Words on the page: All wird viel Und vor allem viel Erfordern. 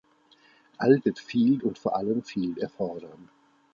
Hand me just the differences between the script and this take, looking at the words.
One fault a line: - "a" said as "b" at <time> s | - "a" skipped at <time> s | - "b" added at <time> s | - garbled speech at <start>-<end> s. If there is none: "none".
none